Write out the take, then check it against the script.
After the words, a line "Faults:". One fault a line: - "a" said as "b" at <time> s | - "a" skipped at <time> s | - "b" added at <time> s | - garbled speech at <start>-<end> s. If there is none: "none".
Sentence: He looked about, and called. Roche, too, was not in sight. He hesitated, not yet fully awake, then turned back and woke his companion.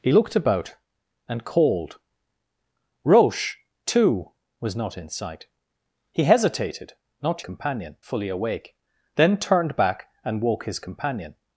He looked about, and called. Roche, too, was not in sight. He hesitated, not companion fully awake, then turned back and woke his companion.
Faults:
- "yet" said as "companion" at 7.4 s